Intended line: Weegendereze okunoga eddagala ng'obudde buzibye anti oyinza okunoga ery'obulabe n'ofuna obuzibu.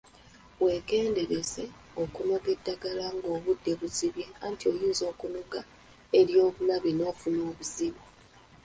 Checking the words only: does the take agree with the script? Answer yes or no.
yes